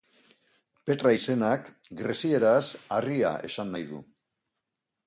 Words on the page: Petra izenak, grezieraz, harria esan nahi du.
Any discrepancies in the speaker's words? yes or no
no